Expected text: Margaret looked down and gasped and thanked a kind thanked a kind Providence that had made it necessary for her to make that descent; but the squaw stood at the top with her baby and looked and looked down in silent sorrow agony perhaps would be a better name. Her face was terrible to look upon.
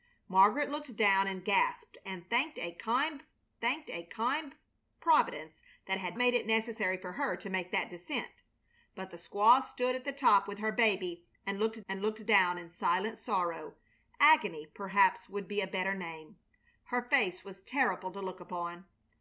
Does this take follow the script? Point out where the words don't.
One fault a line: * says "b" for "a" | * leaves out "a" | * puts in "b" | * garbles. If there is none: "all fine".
all fine